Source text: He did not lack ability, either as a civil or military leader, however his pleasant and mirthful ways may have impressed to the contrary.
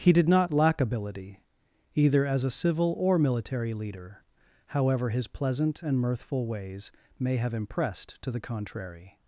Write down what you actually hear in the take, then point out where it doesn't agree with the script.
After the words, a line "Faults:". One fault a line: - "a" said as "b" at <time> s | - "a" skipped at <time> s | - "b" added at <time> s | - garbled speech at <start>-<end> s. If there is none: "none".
He did not lack ability, either as a civil or military leader, however his pleasant and mirthful ways may have impressed to the contrary.
Faults:
none